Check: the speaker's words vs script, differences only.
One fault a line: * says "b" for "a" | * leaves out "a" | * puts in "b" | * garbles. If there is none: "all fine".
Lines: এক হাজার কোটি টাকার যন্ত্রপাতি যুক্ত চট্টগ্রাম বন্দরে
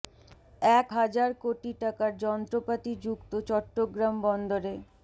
all fine